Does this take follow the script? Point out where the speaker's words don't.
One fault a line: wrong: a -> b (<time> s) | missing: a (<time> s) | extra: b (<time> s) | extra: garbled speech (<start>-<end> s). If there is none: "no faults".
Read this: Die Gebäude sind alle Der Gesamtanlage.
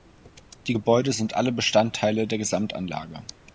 extra: Bestandteile (1.5 s)